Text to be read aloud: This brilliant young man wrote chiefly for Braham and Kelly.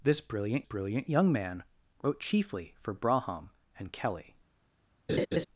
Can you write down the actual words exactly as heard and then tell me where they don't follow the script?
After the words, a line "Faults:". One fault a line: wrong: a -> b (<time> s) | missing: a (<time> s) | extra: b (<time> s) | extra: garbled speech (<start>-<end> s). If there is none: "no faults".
This brilliant brilliant young man wrote chiefly for Braham and Kelly.
Faults:
extra: brilliant (0.6 s)